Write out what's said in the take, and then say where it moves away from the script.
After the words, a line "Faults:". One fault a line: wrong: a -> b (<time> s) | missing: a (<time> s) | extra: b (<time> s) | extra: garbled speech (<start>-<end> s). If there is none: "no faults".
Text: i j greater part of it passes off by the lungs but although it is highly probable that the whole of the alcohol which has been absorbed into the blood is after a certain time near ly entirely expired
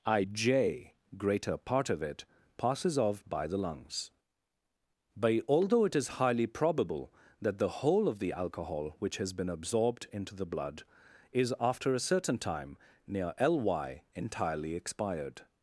i j greater part of it passes off by the lungs but although it is highly probable that the whole of the alcohol which has been absorbed into the blood is after a certain time near ly entirely expired
Faults:
no faults